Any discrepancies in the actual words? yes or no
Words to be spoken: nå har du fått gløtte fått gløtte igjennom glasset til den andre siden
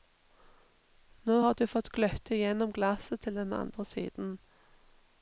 yes